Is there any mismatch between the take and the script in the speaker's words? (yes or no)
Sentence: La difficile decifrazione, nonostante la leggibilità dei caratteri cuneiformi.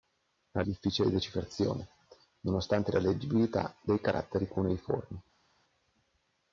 no